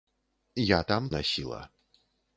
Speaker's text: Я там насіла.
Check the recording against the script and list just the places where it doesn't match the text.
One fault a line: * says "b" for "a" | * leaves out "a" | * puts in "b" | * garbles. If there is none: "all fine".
all fine